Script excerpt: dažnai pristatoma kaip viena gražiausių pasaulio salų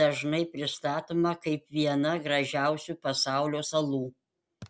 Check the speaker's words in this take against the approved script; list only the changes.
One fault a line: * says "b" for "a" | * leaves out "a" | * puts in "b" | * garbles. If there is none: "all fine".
all fine